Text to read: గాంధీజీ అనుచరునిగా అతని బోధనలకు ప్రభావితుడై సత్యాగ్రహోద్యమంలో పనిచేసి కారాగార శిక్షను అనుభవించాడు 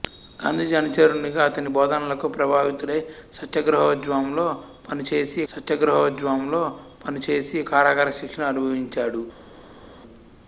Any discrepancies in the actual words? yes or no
yes